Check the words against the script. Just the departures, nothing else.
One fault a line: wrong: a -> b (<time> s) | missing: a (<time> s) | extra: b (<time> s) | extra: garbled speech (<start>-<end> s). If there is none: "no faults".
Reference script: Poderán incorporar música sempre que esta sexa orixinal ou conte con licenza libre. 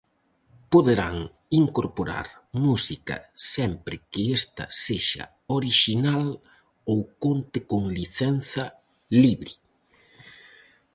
no faults